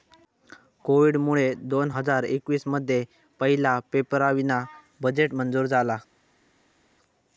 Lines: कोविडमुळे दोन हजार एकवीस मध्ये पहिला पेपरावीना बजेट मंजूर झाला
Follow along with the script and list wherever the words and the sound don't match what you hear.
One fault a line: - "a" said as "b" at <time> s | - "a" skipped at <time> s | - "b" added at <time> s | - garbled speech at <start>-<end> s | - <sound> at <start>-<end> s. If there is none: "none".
none